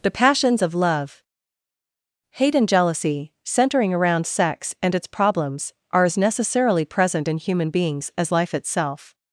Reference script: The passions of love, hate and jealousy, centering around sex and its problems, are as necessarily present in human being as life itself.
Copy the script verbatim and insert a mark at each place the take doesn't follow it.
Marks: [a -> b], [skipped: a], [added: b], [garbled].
The passions of love, hate and jealousy, centering around sex and its problems, are as necessarily present in human [being -> beings] as life itself.